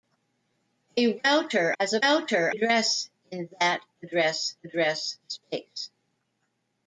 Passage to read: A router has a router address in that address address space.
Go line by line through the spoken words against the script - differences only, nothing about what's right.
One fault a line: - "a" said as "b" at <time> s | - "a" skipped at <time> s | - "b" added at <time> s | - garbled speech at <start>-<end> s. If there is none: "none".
none